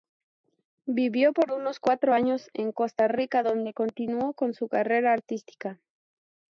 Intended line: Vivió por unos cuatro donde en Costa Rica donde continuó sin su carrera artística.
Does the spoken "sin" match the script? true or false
false